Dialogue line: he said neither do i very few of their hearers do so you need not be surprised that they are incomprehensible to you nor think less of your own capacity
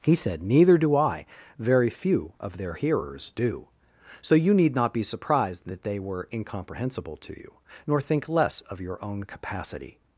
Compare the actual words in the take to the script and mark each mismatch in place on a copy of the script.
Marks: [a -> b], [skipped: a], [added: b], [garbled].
he said neither do i very few of their hearers do so you need not be surprised that they [are -> were] incomprehensible to you nor think less of your own capacity